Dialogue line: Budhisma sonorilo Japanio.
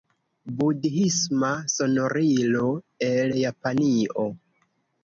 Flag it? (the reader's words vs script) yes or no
yes